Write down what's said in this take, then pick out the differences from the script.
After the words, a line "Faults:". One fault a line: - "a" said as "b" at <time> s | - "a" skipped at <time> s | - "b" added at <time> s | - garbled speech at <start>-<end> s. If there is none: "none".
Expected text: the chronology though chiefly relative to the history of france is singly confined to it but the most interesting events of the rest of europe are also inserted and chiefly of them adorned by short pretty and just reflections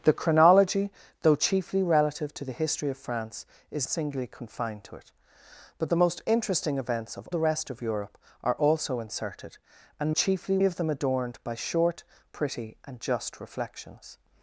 the chronology though chiefly relative to the history of france is singly confined to it but the most interesting events of the rest of europe are also inserted and chiefly of them adorned by short pretty and just reflections
Faults:
none